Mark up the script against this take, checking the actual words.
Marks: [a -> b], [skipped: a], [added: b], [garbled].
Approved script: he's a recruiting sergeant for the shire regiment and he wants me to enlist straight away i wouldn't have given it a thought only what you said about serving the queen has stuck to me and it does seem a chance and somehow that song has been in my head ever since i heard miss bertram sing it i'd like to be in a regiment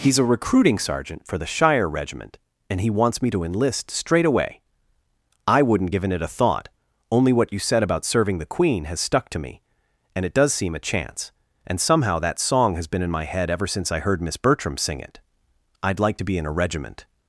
he's a recruiting sergeant for the shire regiment and he wants me to enlist straight away i wouldn't [skipped: have] given it a thought only what you said about serving the queen has stuck to me and it does seem a chance and somehow that song has been in my head ever since i heard miss bertram sing it i'd like to be in a regiment